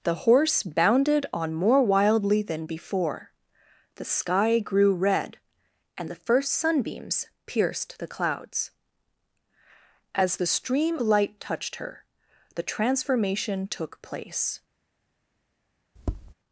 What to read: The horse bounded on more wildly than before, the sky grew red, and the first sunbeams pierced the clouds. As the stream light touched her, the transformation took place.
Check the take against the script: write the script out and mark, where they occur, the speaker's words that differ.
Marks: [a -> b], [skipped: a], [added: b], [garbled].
The horse bounded on more wildly than before, the sky grew red, and the first sunbeams pierced the clouds. As the stream light touched her, the transformation took place.